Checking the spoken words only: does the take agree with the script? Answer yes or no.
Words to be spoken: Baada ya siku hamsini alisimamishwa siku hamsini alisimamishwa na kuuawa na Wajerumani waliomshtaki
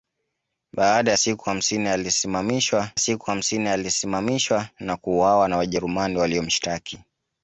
yes